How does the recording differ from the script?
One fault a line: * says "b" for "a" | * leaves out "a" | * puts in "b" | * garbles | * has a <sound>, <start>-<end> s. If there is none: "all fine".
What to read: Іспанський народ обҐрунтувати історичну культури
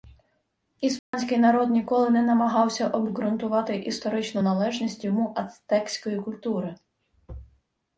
* has a dropout, 1.0-1.1 s
* puts in "ніколи не намагався"
* puts in "належність йому ацтекської"